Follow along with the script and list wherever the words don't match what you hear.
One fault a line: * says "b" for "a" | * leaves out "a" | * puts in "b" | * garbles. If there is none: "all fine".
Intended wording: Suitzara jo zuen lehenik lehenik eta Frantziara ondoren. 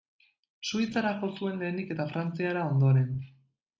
* leaves out "lehenik"